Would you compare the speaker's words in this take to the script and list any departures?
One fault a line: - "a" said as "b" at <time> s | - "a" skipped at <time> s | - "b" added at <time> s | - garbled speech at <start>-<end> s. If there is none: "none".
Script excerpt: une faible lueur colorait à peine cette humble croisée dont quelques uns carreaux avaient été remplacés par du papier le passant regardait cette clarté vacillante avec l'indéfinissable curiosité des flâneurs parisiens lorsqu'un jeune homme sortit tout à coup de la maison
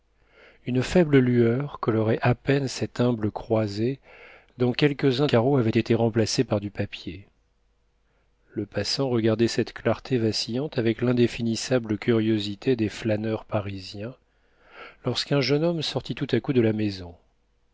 none